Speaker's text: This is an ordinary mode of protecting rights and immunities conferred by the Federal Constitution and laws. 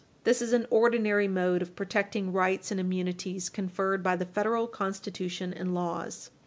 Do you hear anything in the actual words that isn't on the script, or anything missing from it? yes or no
no